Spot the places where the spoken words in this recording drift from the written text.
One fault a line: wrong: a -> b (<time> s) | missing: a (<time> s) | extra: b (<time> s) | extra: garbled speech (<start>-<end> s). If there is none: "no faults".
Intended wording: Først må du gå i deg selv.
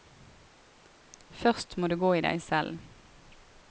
no faults